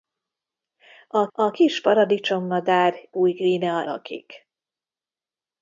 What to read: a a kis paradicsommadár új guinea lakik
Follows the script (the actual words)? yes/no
yes